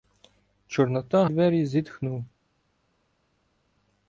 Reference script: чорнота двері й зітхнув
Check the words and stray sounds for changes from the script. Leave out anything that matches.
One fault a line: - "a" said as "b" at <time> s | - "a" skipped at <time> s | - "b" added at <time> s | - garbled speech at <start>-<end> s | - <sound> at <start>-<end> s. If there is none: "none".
none